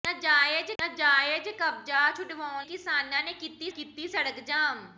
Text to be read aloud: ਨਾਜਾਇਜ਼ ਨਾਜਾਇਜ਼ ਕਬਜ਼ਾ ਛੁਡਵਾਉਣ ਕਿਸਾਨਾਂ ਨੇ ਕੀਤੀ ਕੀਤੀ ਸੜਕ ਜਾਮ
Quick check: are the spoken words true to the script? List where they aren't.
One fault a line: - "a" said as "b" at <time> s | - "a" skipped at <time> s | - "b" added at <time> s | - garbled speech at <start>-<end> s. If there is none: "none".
none